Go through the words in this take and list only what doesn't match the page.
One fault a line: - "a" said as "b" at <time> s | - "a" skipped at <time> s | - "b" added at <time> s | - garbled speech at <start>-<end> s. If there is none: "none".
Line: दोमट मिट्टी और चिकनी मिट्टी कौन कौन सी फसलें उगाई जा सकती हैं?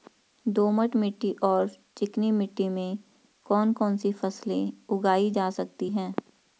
- "में" added at 2.7 s